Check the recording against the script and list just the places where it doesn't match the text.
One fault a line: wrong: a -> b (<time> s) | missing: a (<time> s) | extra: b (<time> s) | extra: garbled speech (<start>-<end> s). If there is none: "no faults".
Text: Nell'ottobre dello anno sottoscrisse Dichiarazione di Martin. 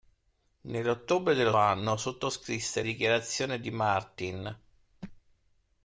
no faults